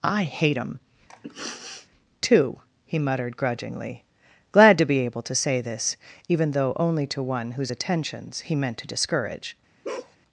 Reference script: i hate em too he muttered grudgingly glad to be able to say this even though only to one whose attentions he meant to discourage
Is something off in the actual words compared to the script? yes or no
no